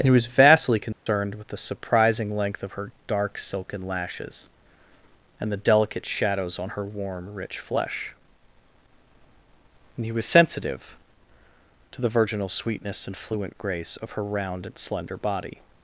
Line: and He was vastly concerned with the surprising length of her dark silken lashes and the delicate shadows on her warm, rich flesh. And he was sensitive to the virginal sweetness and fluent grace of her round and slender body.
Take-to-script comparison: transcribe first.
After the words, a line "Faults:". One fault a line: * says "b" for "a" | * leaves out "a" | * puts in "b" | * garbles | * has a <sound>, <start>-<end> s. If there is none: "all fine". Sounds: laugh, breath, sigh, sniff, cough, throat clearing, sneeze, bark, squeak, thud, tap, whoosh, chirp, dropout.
and He was vastly concerned with the surprising length of her dark silken lashes and the delicate shadows on her warm, rich flesh. And he was sensitive to the virginal sweetness and fluent grace of her round and slender body.
Faults:
* has a dropout, 0.9-1.1 s